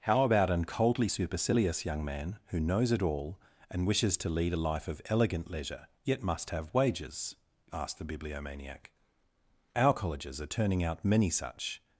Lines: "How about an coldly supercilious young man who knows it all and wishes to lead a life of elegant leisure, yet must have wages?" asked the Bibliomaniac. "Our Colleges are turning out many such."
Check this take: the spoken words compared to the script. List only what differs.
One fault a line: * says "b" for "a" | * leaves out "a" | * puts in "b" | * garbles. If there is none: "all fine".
all fine